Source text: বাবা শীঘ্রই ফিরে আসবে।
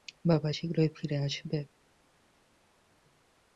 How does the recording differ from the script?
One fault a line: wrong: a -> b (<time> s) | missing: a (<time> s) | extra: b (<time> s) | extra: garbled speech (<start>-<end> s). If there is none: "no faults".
no faults